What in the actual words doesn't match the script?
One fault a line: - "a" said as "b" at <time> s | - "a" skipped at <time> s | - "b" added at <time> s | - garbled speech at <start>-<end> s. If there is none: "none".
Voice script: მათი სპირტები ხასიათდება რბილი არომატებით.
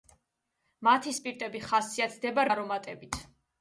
- "რბილი" skipped at 2.5 s